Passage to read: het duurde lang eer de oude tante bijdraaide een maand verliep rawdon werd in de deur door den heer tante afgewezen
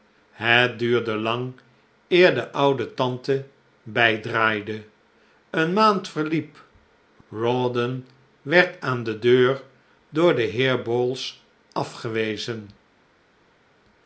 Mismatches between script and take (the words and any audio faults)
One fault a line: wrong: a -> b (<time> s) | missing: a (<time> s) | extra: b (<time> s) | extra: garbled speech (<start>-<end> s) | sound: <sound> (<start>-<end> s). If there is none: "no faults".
wrong: in -> aan (8.8 s)
wrong: tante -> bowls (10.8 s)